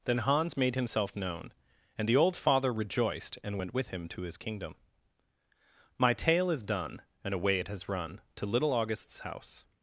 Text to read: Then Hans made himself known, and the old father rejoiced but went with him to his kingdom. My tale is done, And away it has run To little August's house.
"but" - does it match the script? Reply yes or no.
no